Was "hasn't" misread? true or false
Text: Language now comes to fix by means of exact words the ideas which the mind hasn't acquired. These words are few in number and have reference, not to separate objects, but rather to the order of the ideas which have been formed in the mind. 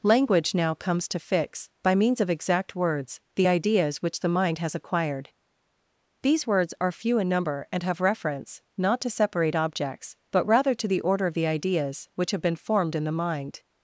true